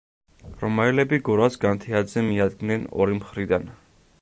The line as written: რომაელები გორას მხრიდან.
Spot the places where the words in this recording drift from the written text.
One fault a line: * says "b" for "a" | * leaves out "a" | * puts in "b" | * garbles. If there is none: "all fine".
* puts in "განთიადზე მიადგნენ ორი"